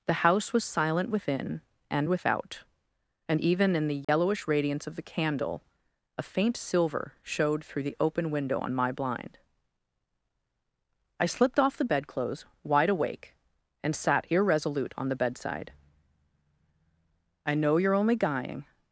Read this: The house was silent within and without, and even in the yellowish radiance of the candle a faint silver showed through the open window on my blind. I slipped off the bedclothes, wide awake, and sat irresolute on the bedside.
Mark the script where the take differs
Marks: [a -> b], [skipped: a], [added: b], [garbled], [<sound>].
The house was silent within and without, and even in the yellowish [dropout] radiance of the candle a faint silver showed through the open window on my blind. I slipped off the bedclothes, wide awake, and sat irresolute on the bedside. [added: I know you're only guying]